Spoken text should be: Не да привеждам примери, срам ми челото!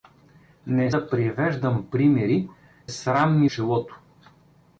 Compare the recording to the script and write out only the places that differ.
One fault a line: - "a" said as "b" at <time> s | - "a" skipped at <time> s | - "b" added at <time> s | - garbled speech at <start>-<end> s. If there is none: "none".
none